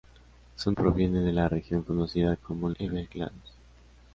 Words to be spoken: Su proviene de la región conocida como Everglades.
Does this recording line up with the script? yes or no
yes